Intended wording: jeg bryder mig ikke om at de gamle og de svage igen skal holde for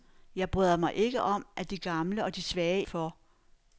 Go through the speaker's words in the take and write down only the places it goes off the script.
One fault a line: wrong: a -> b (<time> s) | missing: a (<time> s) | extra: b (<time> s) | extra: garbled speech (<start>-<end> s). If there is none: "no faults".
missing: igen skal holde (2.9 s)